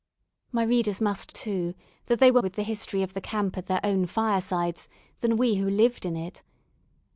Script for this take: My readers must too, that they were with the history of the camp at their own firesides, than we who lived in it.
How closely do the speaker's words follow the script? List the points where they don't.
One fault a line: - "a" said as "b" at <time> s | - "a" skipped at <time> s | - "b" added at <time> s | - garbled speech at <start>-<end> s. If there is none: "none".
none